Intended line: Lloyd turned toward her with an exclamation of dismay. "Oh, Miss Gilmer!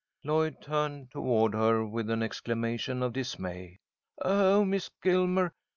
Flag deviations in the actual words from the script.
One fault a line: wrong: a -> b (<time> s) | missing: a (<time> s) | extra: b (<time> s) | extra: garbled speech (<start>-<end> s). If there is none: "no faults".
no faults